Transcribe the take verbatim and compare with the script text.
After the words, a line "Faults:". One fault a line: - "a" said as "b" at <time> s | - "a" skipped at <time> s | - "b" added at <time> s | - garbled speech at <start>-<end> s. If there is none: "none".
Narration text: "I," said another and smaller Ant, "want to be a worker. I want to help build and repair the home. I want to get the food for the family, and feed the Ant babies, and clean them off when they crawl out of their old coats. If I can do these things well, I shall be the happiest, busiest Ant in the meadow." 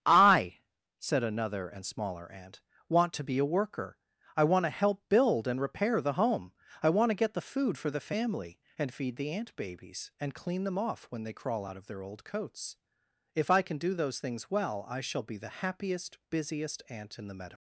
"I," said another and smaller Ant, "want to be a worker. I want to help build and repair the home. I want to get the food for the family, and feed the Ant babies, and clean them off when they crawl out of their old coats. If I can do those things well, I shall be the happiest, busiest Ant in the meadow."
Faults:
- "these" said as "those" at 13.9 s